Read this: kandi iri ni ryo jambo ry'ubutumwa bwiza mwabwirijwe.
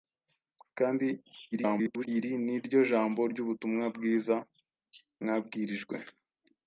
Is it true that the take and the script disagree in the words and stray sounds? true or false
true